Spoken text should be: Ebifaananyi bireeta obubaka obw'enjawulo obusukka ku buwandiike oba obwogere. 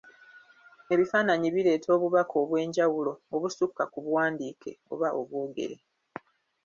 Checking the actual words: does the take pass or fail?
pass